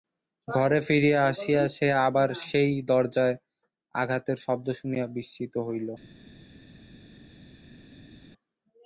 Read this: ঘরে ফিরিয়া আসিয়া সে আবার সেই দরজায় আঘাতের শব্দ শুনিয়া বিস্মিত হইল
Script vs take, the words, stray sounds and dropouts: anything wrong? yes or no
no